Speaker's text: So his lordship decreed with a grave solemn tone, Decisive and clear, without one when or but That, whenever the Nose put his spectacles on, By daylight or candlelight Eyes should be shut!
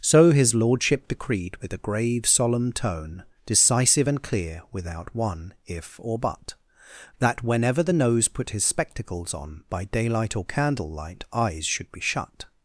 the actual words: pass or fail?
fail